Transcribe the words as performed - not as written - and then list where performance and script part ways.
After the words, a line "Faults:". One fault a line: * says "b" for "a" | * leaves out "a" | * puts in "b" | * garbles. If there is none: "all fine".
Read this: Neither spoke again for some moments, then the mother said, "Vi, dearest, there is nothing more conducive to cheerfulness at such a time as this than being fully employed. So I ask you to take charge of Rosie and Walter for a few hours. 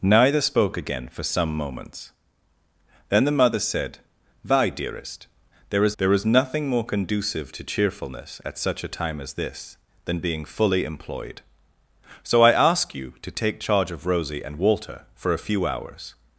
Neither spoke again for some moments, then the mother said, "Vi, dearest, there is there is nothing more conducive to cheerfulness at such a time as this than being fully employed. So I ask you to take charge of Rosie and Walter for a few hours.
Faults:
* puts in "there is"